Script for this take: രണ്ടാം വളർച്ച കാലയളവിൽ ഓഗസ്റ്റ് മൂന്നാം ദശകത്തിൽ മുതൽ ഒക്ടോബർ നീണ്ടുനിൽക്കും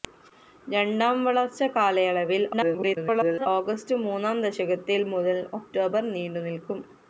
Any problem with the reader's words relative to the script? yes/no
yes